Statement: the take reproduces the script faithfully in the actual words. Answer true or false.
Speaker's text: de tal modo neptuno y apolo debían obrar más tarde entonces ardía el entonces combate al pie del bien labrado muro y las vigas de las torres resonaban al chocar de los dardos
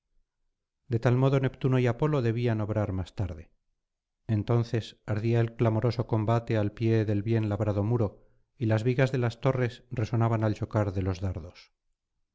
false